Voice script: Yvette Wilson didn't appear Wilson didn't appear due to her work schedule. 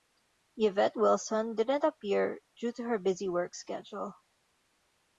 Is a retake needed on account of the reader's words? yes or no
yes